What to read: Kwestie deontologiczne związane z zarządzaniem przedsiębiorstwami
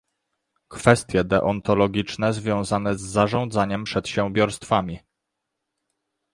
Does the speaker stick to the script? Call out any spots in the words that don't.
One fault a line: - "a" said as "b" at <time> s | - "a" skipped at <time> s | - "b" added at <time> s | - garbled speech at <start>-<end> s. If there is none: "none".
none